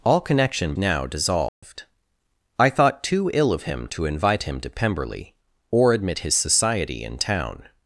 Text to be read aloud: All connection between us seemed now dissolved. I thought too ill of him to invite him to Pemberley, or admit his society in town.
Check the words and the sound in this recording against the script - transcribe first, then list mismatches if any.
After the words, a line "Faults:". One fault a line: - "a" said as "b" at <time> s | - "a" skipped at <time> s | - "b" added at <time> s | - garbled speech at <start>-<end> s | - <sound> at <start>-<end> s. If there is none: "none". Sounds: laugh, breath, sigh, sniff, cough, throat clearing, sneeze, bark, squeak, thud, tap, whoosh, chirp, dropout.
All connection now dissolved. I thought too ill of him to invite him to Pemberley, or admit his society in town.
Faults:
- "between us seemed" skipped at 0.7 s
- dropout at 1.5-1.6 s